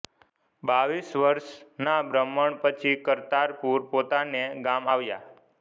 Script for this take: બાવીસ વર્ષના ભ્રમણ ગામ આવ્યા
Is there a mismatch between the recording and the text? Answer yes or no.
yes